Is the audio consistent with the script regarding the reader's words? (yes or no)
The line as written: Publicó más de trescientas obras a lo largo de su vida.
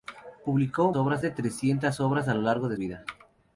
no